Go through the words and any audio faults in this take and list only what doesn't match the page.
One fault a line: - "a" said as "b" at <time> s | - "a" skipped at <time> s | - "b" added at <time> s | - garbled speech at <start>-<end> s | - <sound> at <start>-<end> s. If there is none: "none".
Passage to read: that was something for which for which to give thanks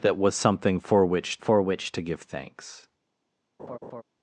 - laugh at 3.6-4.0 s